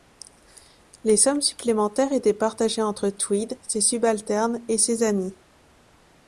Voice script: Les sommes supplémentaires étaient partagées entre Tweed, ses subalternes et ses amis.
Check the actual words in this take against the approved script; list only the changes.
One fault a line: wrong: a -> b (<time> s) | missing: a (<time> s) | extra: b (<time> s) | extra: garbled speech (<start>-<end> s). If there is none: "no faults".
no faults